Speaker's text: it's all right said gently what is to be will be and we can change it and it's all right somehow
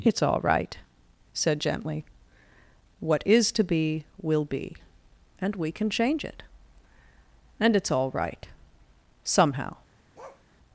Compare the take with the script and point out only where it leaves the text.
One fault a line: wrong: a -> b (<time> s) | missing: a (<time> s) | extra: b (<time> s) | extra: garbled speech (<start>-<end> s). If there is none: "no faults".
no faults